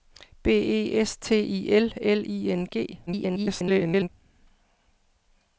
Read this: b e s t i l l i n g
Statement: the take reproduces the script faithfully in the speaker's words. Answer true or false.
false